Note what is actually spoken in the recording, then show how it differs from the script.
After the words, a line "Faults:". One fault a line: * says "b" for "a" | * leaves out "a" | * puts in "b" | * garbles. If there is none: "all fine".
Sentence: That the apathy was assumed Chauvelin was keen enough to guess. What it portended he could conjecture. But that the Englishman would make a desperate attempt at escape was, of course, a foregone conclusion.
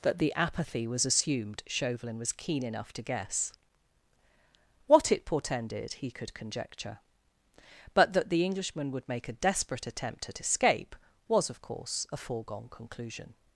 That the apathy was assumed Chauvelin was keen enough to guess. What it portended he could conjecture. But that the Englishman would make a desperate attempt at escape was, of course, a foregone conclusion.
Faults:
all fine